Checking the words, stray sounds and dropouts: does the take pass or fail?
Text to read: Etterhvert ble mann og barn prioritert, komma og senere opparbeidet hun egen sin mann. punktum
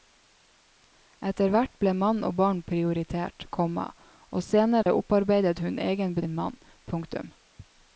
fail